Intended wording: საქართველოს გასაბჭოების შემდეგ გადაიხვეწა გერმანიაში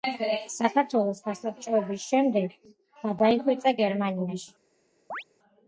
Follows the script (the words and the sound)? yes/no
no